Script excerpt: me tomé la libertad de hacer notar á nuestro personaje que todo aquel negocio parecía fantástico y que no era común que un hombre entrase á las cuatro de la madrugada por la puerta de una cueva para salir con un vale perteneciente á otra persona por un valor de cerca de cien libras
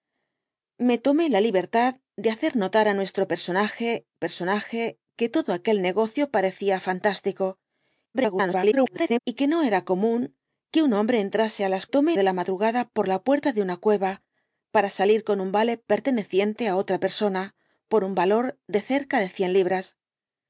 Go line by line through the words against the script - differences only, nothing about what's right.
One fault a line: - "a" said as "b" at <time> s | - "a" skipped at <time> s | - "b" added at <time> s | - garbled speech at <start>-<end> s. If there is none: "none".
- "personaje" added at 4.2 s
- garbled speech at 8.1-9.2 s
- "cuatro" said as "tomé" at 11.9 s